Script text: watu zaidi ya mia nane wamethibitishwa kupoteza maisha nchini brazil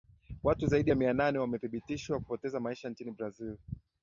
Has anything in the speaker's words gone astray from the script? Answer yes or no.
no